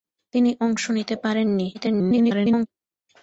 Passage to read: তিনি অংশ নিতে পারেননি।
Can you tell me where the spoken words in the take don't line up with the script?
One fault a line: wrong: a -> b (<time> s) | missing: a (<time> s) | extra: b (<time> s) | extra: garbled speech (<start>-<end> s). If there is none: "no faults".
extra: garbled speech (1.7-2.7 s)